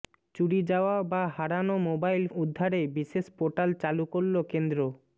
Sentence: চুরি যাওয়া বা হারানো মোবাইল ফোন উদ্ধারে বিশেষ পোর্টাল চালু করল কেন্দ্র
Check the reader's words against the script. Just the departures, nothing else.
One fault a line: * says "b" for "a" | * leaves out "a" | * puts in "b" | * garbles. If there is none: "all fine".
* leaves out "ফোন"